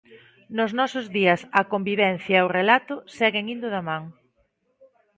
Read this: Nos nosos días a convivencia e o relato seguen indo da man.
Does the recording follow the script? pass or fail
pass